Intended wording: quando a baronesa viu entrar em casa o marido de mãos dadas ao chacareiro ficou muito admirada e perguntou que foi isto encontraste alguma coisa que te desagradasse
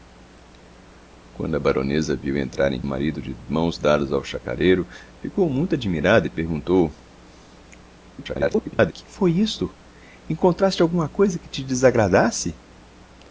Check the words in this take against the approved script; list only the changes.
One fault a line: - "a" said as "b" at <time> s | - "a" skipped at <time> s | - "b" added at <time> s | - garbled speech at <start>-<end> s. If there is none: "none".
- "casa" skipped at 2.8 s
- garbled speech at 8.2-8.9 s